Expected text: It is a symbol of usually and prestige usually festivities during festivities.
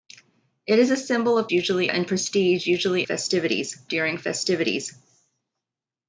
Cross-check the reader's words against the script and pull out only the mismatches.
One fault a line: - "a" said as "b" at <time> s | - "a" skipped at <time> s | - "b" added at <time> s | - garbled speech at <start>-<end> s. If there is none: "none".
none